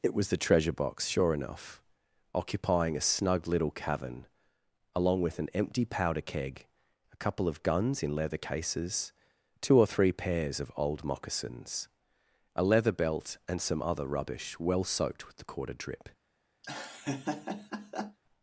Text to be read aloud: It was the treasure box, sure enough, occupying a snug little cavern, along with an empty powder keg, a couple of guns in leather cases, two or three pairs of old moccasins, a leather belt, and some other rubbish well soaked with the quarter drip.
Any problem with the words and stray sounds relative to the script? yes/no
yes